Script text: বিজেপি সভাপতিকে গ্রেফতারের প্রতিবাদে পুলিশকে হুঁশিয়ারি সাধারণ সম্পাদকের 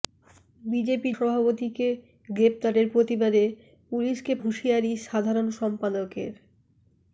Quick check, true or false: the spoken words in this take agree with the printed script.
true